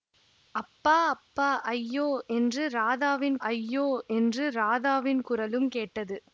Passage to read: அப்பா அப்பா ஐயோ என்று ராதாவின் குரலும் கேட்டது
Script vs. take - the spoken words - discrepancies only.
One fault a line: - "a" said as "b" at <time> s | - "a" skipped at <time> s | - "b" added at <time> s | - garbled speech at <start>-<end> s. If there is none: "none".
- "ஐயோ என்று ராதாவின்" added at 3.5 s